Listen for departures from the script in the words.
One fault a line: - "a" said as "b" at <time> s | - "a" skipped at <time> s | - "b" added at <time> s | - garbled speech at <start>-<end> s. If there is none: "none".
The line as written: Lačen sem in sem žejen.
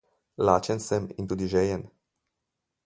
- "sem" said as "tudi" at 1.2 s